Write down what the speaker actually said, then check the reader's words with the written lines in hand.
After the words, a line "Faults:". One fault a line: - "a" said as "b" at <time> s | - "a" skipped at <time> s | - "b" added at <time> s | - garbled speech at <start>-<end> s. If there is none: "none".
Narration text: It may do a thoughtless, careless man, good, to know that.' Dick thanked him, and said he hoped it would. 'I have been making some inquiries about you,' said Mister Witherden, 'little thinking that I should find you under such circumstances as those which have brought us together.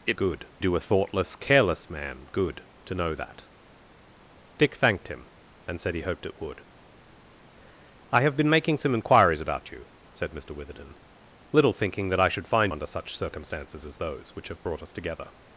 It good do a thoughtless, careless man, good, to know that.' Dick thanked him, and said he hoped it would. 'I have been making some inquiries about you,' said Mister Witherden, 'little thinking that I should find under such circumstances as those which have brought us together.
Faults:
- "may" said as "good" at 0.2 s
- "you" skipped at 12.7 s